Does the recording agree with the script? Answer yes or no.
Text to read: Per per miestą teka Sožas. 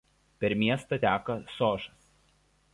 no